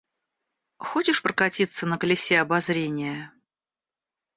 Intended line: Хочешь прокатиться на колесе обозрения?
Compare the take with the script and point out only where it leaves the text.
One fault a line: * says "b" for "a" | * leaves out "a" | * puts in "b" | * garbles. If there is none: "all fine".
all fine